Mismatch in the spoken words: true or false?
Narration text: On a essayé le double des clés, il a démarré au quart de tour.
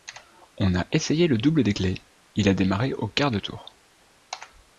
false